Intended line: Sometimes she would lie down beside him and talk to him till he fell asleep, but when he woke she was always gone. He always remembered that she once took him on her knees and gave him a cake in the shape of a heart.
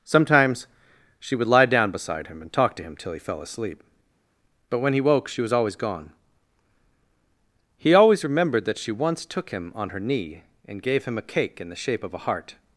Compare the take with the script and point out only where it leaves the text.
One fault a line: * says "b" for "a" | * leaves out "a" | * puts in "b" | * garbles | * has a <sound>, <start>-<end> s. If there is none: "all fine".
* says "knee" for "knees"